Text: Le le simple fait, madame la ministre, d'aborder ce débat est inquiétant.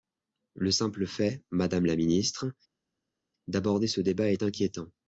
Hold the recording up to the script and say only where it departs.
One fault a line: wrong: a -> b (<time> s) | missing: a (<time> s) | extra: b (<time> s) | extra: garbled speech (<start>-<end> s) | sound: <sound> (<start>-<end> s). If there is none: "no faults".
missing: le (0.7 s)